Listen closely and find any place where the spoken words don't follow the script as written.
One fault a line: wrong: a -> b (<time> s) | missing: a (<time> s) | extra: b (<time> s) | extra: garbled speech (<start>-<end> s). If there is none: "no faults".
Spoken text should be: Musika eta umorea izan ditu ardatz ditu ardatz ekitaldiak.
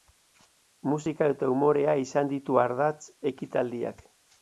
missing: ditu ardatz (3.0 s)